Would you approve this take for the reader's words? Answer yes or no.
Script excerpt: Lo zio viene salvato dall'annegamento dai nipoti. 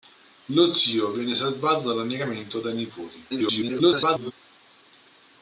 no